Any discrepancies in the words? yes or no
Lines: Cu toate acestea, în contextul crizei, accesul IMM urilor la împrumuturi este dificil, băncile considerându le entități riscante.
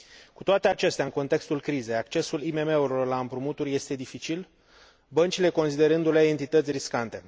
no